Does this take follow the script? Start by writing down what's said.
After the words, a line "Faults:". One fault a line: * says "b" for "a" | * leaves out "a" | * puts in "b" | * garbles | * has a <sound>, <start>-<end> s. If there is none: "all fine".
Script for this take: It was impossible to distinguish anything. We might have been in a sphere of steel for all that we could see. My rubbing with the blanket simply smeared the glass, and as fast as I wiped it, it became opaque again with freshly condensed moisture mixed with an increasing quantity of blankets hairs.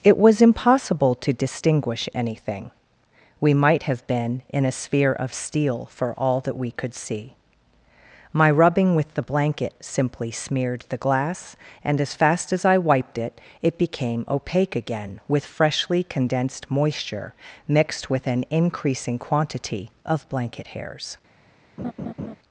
It was impossible to distinguish anything. We might have been in a sphere of steel for all that we could see. My rubbing with the blanket simply smeared the glass, and as fast as I wiped it, it became opaque again with freshly condensed moisture mixed with an increasing quantity of blanket hairs.
Faults:
* says "blanket" for "blankets"
* has a laugh, 21.8-22.3 s